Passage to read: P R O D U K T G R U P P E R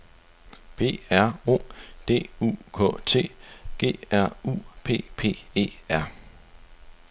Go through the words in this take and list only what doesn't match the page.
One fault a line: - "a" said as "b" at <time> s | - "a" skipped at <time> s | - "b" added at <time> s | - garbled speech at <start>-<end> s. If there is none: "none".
none